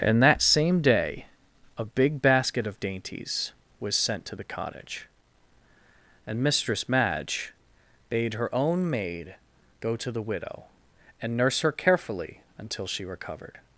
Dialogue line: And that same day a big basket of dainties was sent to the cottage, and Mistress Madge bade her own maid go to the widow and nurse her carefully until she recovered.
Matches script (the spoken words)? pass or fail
pass